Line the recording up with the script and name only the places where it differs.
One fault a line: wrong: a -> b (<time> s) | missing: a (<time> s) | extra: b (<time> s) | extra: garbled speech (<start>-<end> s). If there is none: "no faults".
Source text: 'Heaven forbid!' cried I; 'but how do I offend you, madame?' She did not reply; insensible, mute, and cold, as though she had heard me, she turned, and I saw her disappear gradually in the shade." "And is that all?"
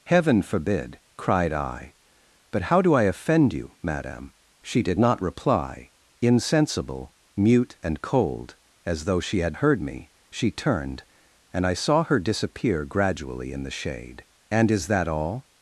no faults